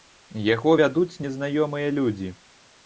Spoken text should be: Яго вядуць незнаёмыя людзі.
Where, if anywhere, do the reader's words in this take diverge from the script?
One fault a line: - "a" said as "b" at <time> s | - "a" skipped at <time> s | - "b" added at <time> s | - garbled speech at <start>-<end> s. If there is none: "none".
none